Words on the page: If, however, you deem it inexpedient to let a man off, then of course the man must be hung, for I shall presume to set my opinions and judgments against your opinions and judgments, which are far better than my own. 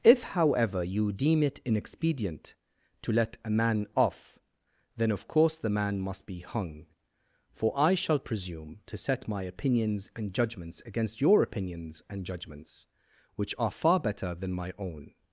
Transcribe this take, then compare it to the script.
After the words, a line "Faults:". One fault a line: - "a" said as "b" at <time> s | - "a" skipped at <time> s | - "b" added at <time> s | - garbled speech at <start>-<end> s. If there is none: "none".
If, however, you deem it inexpedient to let a man off, then of course the man must be hung, for I shall presume to set my opinions and judgments against your opinions and judgments, which are far better than my own.
Faults:
none